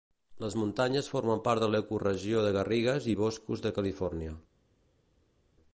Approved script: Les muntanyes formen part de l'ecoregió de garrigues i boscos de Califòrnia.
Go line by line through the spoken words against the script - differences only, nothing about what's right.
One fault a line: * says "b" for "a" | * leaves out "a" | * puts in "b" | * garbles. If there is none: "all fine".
all fine